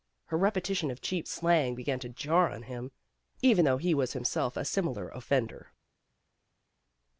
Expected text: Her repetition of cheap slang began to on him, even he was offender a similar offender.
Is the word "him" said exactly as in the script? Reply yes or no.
yes